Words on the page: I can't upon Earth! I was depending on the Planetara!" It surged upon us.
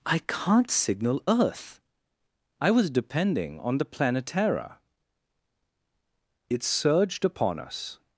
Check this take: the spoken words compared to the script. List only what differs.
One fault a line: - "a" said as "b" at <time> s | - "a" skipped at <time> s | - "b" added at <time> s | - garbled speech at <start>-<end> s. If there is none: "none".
- "upon" said as "signal" at 0.7 s